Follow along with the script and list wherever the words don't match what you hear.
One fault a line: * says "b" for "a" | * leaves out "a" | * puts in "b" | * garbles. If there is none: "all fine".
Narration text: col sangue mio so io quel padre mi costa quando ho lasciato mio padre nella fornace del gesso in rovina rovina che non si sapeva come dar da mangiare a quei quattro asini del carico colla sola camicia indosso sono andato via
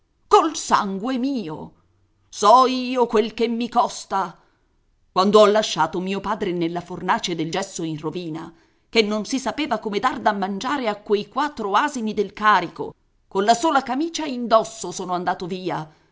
* says "che" for "padre"
* leaves out "rovina"